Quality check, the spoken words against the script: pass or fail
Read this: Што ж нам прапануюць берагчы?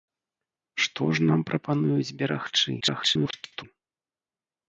fail